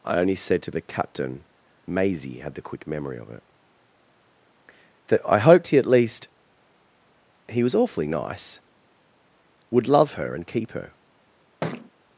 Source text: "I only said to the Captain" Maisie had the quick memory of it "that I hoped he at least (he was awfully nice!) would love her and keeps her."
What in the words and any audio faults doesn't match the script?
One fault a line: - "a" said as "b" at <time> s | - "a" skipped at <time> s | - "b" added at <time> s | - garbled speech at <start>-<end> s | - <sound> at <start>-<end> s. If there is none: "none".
- "keeps" said as "keep" at 10.5 s
- thud at 11.6-11.9 s